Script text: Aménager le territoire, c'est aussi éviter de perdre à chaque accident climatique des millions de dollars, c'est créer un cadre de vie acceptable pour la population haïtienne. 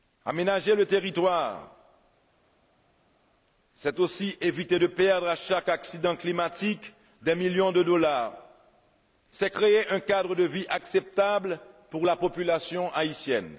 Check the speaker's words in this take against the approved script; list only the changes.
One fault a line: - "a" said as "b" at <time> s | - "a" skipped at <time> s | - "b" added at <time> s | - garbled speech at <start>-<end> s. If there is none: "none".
none